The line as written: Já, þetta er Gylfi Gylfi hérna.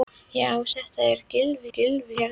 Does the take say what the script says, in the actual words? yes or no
yes